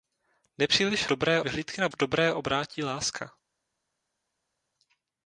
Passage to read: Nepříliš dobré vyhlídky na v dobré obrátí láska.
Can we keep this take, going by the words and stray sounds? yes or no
yes